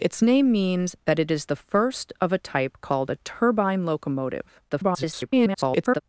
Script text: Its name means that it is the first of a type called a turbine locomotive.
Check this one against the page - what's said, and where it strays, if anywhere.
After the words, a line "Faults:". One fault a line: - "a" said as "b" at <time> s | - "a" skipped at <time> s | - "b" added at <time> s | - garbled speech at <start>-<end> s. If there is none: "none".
Its name means that it is the first of a type called a turbine locomotive. [garbled]
Faults:
- garbled speech at 4.7-6.0 s